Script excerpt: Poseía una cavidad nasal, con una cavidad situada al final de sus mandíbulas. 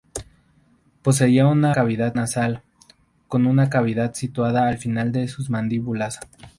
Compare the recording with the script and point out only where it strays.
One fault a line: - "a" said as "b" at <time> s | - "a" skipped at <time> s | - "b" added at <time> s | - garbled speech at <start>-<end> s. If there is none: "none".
none